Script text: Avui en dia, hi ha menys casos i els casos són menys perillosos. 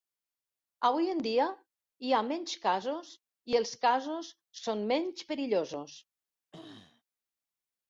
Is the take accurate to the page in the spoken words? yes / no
yes